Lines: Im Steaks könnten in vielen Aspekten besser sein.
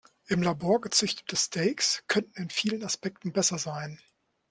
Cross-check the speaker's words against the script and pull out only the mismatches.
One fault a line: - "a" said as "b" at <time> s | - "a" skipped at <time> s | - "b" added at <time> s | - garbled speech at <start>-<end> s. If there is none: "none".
- "Labor gezüchtete" added at 0.4 s